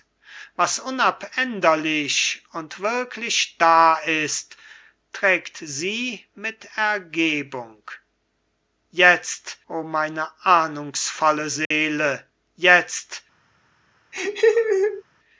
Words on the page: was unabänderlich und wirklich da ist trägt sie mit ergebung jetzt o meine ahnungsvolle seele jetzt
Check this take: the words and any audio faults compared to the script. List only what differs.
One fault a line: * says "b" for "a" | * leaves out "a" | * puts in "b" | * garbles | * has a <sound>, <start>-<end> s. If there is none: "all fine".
* has a dropout, 11.7-11.7 s
* has a laugh, 14.1-15.0 s